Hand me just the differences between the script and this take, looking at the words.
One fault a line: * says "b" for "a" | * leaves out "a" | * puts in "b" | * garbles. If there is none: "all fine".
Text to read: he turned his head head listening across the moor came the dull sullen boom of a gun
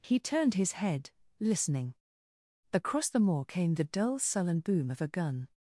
* leaves out "head"